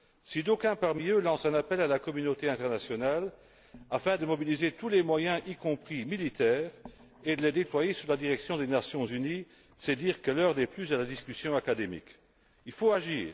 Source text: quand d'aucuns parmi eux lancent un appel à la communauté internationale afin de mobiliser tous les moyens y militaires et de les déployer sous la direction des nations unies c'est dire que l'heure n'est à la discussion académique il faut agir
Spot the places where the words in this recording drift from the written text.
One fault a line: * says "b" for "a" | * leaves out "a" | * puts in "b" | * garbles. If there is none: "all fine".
* says "si" for "quand"
* puts in "compris"
* puts in "plus"